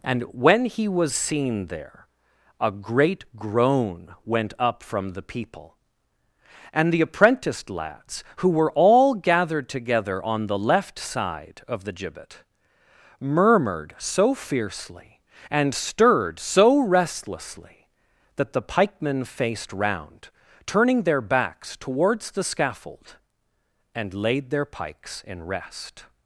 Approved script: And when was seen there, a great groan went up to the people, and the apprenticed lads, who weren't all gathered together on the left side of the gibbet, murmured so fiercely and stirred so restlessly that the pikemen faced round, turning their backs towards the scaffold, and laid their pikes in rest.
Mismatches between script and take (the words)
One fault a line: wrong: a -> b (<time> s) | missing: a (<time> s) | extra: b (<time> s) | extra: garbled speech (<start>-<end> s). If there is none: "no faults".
extra: he (0.7 s)
wrong: to -> from (4.8 s)
wrong: weren't -> were (8.5 s)